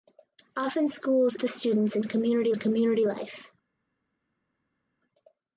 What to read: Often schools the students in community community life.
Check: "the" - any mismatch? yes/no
no